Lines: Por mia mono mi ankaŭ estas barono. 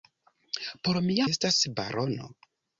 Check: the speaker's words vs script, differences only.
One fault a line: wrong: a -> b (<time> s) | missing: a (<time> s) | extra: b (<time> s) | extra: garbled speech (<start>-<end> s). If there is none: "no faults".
missing: mono mi ankaŭ (1.3 s)